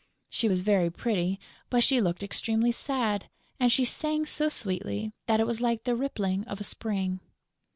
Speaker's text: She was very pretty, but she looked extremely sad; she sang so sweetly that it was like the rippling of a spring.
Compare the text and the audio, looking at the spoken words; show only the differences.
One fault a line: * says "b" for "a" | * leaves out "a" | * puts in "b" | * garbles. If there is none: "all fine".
* puts in "and"